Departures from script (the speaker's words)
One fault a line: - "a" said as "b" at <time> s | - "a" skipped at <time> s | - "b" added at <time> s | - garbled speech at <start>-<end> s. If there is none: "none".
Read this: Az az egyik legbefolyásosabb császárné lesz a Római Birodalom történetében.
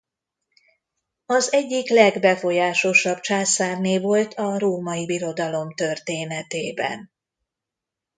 - "az" skipped at 1.5 s
- "lesz" said as "volt" at 4.0 s